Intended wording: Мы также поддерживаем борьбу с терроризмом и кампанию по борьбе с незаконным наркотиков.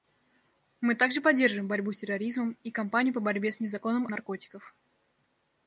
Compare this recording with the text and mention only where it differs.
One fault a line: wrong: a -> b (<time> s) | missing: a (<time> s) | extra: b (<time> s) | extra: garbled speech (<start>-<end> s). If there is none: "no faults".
no faults